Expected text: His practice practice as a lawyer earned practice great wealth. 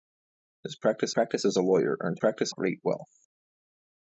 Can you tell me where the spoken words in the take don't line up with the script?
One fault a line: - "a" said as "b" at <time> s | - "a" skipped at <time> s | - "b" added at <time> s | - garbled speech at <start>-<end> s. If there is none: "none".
none